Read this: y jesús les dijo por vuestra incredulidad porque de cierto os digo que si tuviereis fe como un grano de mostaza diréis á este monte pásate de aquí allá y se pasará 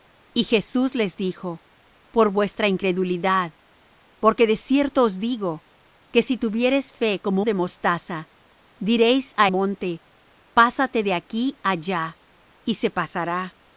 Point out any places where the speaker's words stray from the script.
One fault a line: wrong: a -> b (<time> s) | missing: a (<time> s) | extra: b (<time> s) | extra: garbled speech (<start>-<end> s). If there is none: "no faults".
missing: un grano (7.5 s)
missing: este (9.5 s)